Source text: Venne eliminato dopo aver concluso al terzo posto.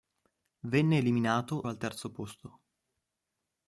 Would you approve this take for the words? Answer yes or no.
no